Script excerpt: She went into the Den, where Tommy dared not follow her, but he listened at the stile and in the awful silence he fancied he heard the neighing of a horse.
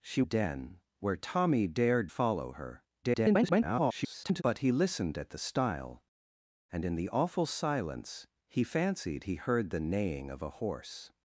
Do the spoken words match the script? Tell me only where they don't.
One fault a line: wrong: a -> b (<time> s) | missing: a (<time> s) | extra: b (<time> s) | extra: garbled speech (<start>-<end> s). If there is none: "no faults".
missing: went into the (0.2 s)
missing: not (2.1 s)
extra: garbled speech (3.0-4.4 s)